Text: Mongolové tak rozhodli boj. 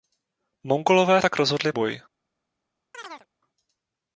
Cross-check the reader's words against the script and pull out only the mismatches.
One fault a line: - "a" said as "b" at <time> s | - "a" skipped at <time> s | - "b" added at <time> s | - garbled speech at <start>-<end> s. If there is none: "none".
none